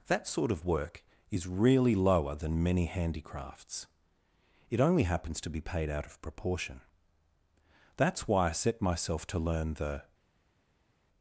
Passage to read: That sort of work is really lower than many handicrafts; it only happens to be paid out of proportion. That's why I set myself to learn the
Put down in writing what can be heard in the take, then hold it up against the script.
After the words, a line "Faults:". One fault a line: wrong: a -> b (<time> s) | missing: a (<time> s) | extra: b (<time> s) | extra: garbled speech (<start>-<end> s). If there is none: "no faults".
That sort of work is really lower than many handicrafts; it only happens to be paid out of proportion. That's why I set myself to learn the
Faults:
no faults